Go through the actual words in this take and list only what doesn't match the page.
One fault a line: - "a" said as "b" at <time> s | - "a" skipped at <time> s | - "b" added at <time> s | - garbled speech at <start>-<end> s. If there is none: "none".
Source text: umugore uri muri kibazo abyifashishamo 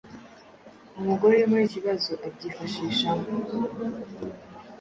none